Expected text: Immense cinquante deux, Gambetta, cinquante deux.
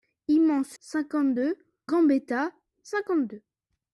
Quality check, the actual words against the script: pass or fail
pass